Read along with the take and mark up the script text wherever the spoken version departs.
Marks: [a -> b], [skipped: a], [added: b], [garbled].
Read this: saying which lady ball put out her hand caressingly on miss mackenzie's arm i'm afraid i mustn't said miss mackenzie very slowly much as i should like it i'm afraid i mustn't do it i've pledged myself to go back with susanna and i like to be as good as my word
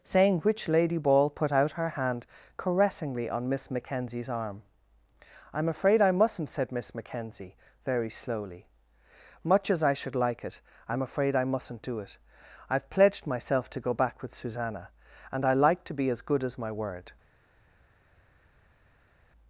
saying which lady ball put out her hand caressingly on miss mackenzie's arm i'm afraid i mustn't said miss mackenzie very slowly much as i should like it i'm afraid i mustn't do it i've pledged myself to go back with susanna and i like to be as good as my word